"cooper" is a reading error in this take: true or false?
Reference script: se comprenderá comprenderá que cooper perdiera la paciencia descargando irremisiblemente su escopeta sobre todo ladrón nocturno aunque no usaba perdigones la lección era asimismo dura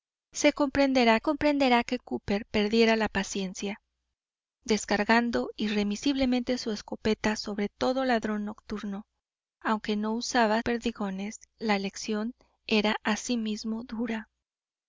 false